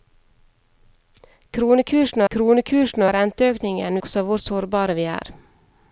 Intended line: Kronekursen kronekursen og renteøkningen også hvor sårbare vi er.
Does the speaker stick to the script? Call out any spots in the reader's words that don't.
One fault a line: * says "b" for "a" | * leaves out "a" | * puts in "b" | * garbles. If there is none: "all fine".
all fine